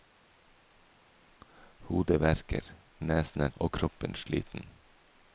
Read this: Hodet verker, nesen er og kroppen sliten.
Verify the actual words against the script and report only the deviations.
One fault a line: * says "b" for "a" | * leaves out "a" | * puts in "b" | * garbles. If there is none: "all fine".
all fine